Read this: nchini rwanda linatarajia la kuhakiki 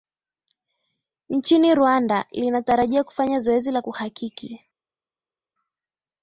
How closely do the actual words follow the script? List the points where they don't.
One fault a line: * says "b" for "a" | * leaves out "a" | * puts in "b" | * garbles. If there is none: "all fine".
* puts in "kufanya zoezi"